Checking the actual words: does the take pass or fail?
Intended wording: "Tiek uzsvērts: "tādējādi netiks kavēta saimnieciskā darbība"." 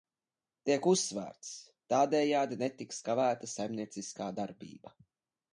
pass